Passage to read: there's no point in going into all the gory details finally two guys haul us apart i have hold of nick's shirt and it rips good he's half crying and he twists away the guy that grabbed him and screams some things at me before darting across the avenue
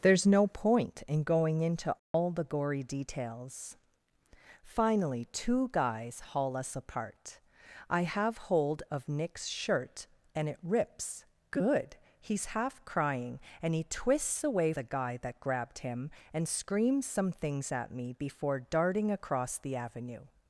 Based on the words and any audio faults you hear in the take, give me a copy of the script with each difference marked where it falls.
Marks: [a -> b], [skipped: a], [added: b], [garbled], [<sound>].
there's no point in going into all [dropout] the gory details finally two guys haul us apart i have hold of nick's shirt and it rips good he's half crying and he twists away the guy that grabbed him and screams some things at me before darting across the avenue